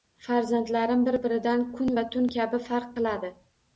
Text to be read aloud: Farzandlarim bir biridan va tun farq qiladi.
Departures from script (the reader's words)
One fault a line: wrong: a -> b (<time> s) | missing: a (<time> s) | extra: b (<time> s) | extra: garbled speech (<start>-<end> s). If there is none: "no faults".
extra: kun (1.8 s)
extra: kabi (2.4 s)